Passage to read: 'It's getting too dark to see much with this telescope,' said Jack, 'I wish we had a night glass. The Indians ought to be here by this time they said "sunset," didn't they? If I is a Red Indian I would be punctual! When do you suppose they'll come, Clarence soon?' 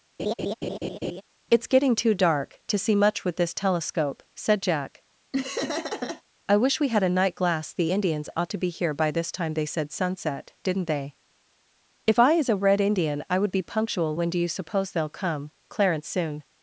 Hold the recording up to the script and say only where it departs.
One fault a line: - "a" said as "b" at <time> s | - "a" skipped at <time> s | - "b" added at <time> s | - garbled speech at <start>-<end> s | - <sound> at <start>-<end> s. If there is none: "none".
- laugh at 0.2-1.2 s
- laugh at 5.3-6.2 s